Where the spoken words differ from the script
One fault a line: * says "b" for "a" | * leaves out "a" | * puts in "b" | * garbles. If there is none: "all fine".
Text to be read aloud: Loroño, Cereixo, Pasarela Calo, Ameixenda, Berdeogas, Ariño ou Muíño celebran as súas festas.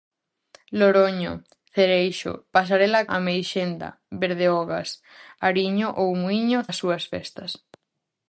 * leaves out "Calo"
* leaves out "celebran"